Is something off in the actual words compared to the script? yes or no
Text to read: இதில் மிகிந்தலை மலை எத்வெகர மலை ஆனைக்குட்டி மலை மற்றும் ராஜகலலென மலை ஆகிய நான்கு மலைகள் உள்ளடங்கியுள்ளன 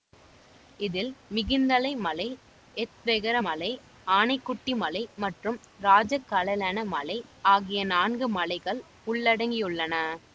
no